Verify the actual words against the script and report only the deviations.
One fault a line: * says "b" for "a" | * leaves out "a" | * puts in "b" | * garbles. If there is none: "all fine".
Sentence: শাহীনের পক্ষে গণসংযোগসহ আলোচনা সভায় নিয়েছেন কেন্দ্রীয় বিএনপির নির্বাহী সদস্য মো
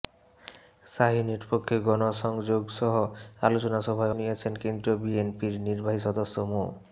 all fine